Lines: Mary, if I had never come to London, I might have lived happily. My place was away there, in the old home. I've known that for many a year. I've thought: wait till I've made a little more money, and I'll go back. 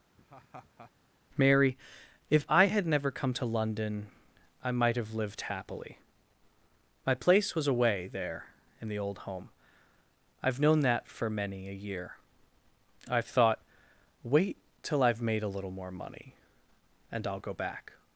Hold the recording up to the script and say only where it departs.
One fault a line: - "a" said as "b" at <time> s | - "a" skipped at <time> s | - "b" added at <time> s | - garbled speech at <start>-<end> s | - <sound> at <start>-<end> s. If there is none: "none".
- laugh at 0.2-0.9 s